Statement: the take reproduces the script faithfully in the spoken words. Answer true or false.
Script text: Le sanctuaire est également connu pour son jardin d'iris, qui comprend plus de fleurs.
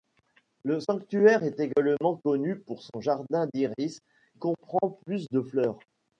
false